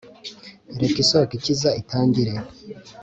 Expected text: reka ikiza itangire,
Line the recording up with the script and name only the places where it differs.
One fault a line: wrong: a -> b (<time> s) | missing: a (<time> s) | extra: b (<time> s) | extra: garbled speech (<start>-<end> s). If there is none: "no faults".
extra: isoko (1.0 s)